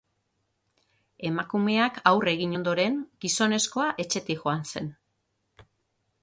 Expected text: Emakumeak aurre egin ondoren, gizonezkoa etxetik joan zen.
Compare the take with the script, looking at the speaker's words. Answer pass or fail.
pass